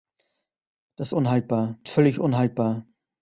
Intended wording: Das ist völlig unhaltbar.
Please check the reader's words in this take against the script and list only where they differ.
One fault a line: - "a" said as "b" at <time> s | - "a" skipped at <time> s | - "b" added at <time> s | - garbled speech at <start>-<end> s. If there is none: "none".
- "ist" said as "unhaltbar" at 1.1 s